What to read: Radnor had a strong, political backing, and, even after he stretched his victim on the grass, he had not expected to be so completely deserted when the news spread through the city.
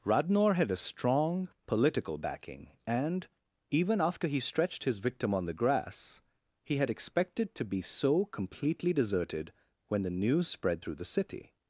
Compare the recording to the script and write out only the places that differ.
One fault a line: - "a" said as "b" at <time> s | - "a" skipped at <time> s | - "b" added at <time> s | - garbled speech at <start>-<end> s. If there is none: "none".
- "not" skipped at 6.9 s